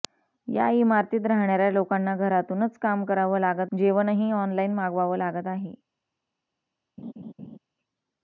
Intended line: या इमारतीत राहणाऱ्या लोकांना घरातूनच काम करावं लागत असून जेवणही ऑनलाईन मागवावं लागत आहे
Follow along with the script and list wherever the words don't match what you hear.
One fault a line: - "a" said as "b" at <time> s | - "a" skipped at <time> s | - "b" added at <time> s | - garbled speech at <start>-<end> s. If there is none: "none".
- "असून" skipped at 3.7 s